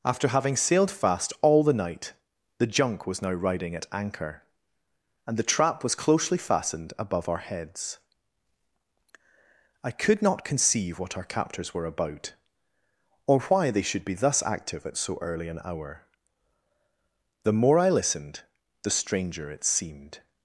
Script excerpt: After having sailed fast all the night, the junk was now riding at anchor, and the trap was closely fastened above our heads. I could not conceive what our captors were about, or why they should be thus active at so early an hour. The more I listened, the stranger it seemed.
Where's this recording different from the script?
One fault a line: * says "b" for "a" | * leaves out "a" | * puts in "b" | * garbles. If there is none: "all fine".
all fine